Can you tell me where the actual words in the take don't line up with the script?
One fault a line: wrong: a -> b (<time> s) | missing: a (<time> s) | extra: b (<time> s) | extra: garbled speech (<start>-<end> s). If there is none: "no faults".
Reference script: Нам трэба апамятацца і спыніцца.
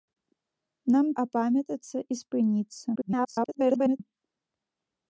missing: трэба (1.1 s)
extra: garbled speech (2.9-4.0 s)